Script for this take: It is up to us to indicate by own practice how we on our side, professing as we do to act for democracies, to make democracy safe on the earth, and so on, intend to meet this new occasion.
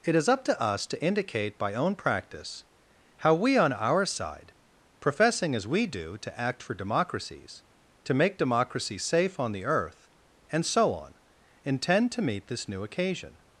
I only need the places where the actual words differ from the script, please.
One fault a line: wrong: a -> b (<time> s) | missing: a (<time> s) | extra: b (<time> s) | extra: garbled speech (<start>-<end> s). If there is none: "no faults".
no faults